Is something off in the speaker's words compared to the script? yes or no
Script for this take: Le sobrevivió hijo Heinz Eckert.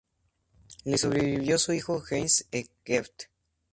yes